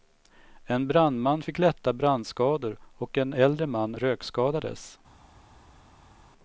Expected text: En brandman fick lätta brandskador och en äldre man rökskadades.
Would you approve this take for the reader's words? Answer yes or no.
yes